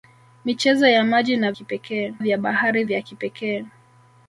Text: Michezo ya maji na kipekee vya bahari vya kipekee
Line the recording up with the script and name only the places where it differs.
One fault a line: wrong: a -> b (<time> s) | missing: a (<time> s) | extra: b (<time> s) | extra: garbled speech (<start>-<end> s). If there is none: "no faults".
no faults